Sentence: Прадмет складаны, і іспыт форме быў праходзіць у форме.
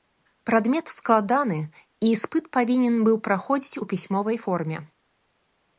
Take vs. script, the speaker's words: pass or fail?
fail